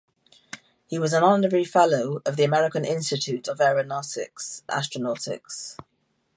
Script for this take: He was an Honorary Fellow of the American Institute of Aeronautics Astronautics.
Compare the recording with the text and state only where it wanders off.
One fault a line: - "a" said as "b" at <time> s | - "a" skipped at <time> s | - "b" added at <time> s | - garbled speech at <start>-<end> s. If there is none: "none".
none